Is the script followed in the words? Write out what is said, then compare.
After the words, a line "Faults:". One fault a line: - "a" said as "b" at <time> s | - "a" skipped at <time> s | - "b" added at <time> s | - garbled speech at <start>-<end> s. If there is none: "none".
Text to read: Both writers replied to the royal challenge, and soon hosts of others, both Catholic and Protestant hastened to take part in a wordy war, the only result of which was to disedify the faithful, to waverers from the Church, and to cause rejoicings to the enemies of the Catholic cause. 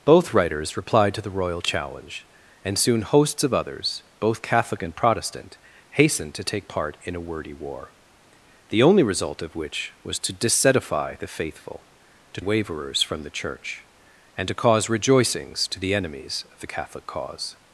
Both writers replied to the royal challenge, and soon hosts of others, both Catholic and Protestant hastened to take part in a wordy war, the only result of which was to disedify the faithful, to waverers from the Church, and to cause rejoicings to the enemies of the Catholic cause.
Faults:
none